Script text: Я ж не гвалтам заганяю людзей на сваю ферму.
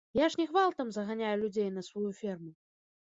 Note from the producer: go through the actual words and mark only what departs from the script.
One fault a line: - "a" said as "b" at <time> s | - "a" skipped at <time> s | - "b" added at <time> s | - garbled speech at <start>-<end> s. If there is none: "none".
none